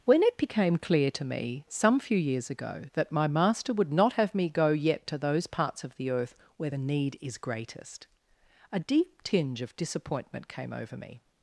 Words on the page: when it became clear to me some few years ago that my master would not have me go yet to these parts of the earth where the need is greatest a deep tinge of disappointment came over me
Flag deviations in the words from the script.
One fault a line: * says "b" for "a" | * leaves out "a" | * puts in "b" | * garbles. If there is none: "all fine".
* says "those" for "these"